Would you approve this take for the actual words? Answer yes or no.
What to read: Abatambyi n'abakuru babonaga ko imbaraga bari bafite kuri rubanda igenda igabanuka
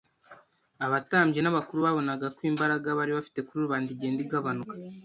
yes